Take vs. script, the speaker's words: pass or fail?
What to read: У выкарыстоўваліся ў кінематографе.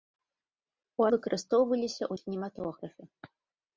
pass